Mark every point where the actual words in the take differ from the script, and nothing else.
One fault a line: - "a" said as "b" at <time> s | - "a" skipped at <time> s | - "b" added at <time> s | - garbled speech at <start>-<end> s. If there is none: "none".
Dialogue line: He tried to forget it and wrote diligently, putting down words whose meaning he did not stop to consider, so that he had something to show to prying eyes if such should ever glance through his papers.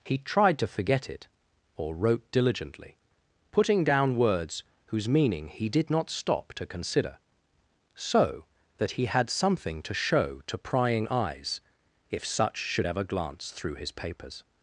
- "and" said as "or" at 1.8 s